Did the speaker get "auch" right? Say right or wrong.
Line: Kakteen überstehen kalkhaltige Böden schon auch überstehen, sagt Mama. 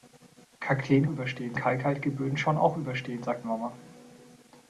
right